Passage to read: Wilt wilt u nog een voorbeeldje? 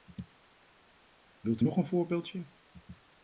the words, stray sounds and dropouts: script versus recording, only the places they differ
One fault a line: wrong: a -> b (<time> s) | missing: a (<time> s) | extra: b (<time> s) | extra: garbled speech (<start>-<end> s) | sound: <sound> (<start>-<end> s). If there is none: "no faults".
missing: wilt (1.6 s)